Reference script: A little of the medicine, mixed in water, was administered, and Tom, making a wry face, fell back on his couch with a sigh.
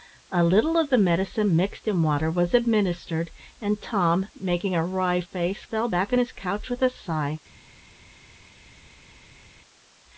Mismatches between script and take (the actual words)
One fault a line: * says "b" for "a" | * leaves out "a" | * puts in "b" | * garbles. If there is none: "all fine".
all fine